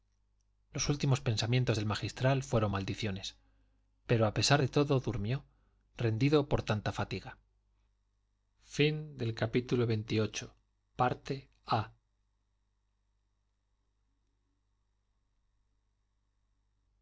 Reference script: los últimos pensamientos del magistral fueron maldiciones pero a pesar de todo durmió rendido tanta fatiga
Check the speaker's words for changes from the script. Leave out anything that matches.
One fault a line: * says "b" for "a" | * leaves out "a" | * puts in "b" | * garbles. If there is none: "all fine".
* puts in "por"